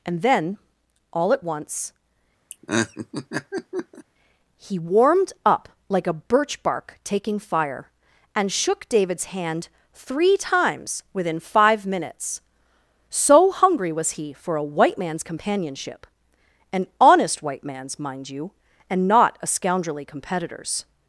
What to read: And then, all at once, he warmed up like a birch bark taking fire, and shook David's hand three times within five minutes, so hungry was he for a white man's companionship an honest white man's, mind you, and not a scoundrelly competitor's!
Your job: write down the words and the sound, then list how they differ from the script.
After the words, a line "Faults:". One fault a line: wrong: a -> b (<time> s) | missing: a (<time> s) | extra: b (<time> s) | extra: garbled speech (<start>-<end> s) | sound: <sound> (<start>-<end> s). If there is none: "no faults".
And then, all at once, he warmed up like a birch bark taking fire, and shook David's hand three times within five minutes, so hungry was he for a white man's companionship an honest white man's, mind you, and not a scoundrelly competitor's!
Faults:
sound: laugh (2.5-4.1 s)